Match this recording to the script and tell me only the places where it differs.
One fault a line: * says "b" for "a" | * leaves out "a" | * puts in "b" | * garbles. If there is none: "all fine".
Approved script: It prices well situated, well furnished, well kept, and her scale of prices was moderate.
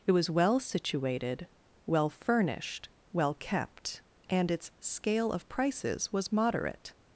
* says "was" for "prices"
* says "its" for "her"